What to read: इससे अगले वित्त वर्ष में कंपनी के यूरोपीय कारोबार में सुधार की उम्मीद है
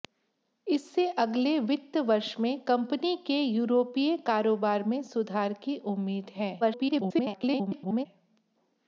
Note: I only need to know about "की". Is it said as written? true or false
true